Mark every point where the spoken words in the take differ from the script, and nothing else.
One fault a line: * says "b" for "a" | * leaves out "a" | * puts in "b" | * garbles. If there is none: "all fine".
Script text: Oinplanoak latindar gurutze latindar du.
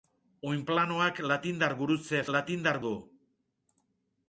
all fine